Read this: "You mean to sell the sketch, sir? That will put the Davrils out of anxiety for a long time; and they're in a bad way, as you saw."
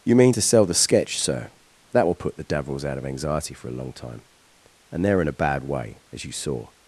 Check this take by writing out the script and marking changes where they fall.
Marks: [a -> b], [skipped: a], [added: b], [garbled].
"You mean to sell the sketch, sir? That will put the Davrils out of anxiety for a long time; and they're in a bad way, as you saw."